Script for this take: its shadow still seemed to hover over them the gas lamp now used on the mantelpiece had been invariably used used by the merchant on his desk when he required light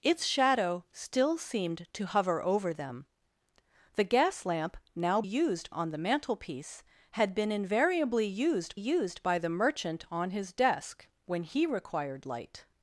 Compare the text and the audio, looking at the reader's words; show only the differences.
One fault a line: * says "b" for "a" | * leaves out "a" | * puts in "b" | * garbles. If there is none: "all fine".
all fine